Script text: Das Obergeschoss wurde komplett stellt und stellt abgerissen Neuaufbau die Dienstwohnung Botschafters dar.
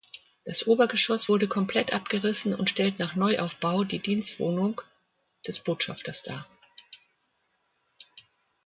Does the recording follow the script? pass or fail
fail